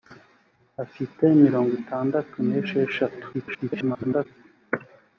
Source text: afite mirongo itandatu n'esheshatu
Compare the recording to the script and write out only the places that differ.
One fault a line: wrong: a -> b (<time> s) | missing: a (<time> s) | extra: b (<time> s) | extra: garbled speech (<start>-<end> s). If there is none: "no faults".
extra: garbled speech (3.3-4.3 s)